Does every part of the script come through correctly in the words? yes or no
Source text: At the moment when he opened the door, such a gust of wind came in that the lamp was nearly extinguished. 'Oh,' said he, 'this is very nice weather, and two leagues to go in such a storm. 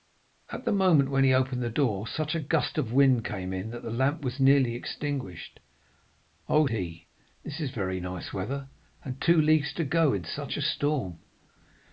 no